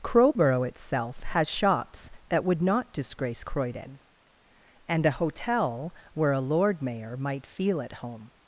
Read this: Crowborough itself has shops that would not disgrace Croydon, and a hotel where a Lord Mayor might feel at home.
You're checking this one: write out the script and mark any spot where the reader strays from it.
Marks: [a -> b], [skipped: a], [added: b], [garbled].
Crowborough itself has shops that would not disgrace Croydon, and a hotel where a Lord Mayor might feel at home.